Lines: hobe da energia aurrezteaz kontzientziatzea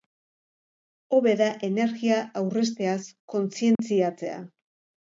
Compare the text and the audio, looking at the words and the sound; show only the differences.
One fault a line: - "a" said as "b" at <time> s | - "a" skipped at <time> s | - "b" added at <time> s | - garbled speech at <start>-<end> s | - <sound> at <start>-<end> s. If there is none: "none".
- dropout at 3.8-3.8 s